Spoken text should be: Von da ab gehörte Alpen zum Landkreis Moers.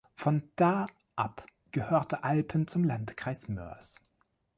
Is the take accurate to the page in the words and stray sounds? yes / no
yes